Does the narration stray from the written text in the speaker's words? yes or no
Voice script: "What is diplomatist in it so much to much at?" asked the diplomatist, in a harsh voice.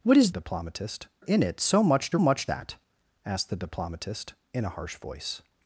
no